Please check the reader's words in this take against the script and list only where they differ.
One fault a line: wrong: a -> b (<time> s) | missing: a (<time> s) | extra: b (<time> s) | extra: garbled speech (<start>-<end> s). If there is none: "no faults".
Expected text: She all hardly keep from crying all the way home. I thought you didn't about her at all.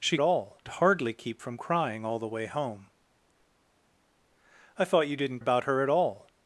no faults